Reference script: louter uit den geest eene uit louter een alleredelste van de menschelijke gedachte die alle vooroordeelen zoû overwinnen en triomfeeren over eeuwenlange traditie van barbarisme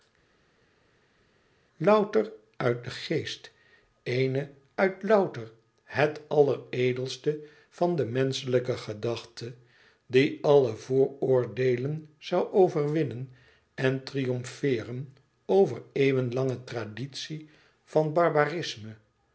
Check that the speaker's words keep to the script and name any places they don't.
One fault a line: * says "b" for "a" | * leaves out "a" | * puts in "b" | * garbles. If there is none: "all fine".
* says "het" for "een"